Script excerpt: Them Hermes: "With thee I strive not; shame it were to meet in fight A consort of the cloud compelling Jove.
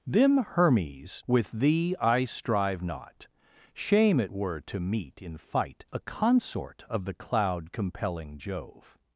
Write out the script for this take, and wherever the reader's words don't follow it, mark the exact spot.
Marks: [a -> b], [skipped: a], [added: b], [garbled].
Them Hermes: "With thee I strive not; shame it were to meet in fight A consort of the cloud compelling Jove.